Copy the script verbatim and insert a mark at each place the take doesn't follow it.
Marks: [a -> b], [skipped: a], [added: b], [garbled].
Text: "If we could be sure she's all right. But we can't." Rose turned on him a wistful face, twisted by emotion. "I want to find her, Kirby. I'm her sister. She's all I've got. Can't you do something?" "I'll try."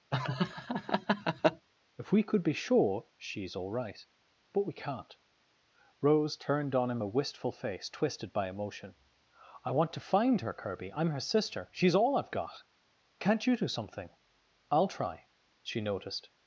"If we could be sure she's all right. But we can't." Rose turned on him a wistful face, twisted by emotion. "I want to find her, Kirby. I'm her sister. She's all I've got. Can't you do something?" "I'll try." [added: She noticed]